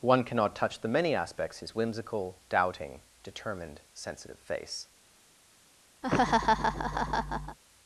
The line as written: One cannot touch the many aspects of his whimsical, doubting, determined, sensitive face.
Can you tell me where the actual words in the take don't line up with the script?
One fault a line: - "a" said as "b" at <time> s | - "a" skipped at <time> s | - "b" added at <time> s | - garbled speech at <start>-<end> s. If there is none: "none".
- "of" skipped at 1.6 s